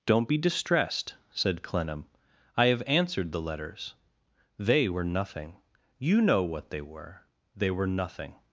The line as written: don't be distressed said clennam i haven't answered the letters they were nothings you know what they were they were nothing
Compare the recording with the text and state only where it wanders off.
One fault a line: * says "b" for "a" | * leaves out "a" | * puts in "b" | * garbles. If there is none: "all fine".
* says "have" for "haven't"
* says "nothing" for "nothings"